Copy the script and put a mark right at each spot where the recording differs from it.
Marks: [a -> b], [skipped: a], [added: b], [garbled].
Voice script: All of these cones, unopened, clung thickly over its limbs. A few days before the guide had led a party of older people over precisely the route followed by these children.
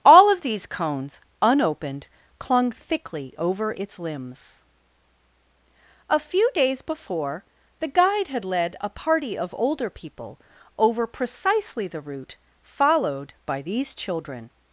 All of these cones, unopened, clung thickly over its limbs. A few days before the guide had led a party of older people over precisely the route followed by these children.